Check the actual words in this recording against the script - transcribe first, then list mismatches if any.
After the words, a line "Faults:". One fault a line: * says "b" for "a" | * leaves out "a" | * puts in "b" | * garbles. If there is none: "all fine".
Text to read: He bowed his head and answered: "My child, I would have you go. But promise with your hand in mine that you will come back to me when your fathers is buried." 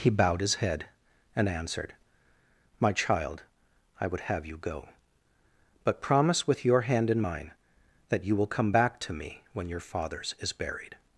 He bowed his head and answered: "My child, I would have you go. But promise with your hand in mine that you will come back to me when your fathers is buried."
Faults:
all fine